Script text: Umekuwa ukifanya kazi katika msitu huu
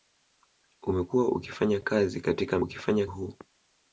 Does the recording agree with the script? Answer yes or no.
no